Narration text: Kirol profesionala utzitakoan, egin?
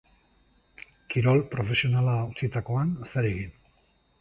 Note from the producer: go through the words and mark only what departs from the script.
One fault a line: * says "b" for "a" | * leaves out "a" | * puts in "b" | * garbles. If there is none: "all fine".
* puts in "zer"